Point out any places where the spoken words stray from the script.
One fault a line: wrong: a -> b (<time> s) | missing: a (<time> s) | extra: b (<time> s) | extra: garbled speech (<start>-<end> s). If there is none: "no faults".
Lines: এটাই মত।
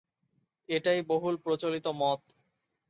extra: বহুল প্রচলিত (1.0 s)